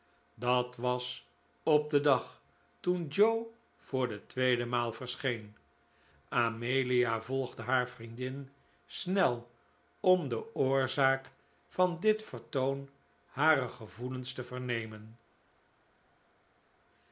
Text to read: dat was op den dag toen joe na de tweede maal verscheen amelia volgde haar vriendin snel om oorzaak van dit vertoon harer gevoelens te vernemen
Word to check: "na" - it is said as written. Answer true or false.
false